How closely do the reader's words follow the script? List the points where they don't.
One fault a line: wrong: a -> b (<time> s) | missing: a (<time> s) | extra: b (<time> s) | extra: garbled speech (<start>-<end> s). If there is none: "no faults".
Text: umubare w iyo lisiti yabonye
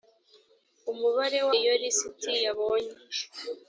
no faults